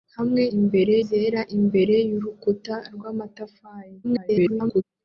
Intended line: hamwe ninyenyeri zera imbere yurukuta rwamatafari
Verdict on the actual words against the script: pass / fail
fail